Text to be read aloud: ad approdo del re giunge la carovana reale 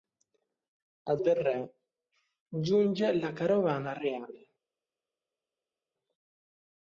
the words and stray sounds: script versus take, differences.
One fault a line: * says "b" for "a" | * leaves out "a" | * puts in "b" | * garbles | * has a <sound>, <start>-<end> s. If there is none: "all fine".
* leaves out "approdo"